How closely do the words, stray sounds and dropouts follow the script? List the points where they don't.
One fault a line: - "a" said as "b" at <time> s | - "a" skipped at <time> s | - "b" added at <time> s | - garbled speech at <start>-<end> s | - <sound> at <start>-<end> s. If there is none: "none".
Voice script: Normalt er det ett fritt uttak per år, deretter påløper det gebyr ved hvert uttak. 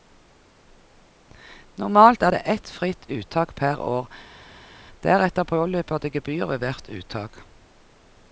none